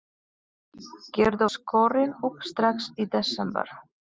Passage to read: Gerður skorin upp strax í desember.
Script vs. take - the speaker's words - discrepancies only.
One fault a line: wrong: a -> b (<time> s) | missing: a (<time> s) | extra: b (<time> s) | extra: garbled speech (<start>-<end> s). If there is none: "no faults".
no faults